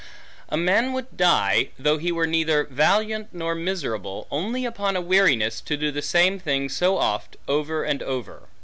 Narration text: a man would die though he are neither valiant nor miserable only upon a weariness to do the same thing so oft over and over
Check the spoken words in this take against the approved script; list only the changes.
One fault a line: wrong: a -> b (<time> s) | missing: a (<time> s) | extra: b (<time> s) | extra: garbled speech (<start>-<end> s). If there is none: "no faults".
wrong: are -> were (2.1 s)